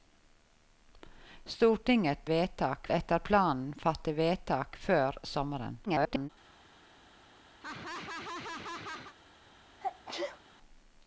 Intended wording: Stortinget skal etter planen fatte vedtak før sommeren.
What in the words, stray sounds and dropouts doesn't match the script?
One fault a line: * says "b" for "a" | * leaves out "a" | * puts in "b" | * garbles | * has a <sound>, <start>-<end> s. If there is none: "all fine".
* says "vedtak" for "skal"
* garbles
* has a laugh, 7.6-9.1 s
* has a sneeze, 9.8-10.4 s